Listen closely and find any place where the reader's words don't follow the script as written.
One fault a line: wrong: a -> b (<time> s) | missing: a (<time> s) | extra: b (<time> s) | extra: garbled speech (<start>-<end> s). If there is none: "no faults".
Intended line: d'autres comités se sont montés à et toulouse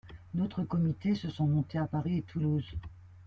extra: paris (1.8 s)